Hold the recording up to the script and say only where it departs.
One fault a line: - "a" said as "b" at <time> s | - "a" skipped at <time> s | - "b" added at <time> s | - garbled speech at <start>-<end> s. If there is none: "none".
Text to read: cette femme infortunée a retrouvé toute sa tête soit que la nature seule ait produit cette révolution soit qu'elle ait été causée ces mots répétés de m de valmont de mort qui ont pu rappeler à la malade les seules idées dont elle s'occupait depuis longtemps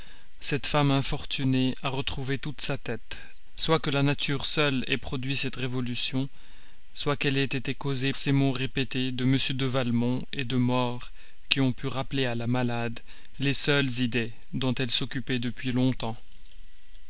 none